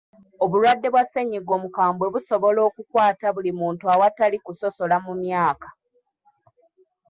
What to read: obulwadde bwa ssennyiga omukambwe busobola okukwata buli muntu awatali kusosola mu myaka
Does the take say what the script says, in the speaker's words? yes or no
yes